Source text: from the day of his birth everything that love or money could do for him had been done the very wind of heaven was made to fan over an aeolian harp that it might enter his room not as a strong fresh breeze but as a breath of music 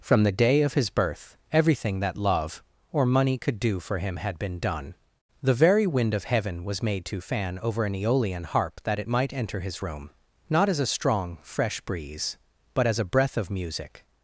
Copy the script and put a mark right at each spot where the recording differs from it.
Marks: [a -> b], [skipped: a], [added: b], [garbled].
from the day of his birth everything that love or money could do for him had been done the very wind of heaven was made to fan over an aeolian harp that it might enter his room not as a strong fresh breeze but as a breath of music